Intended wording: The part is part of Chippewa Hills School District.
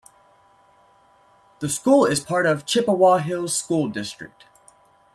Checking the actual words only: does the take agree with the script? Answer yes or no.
no